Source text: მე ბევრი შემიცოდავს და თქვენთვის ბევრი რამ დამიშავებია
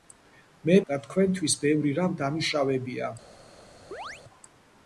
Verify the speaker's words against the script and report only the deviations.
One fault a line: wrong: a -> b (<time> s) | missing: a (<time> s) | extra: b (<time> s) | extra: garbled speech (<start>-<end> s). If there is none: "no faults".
missing: ბევრი შემიცოდავს (0.8 s)